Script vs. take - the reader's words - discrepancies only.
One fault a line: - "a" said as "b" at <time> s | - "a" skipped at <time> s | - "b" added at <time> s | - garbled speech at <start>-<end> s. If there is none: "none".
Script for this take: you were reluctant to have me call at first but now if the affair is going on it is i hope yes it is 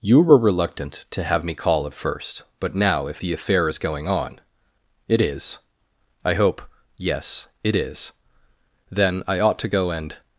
- "then i ought to go and" added at 8.9 s